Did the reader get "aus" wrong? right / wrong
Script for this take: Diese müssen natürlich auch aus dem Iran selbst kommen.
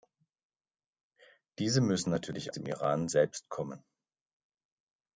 wrong